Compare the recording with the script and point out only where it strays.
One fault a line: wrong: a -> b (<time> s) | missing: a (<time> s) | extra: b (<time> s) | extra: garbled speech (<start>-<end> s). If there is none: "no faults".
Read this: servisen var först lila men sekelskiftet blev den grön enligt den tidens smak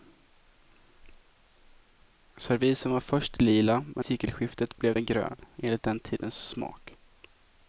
no faults